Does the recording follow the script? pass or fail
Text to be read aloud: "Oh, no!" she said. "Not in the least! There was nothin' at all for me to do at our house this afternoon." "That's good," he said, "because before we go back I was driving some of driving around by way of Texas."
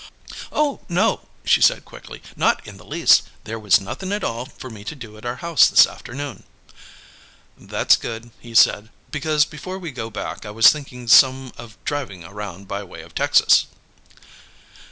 fail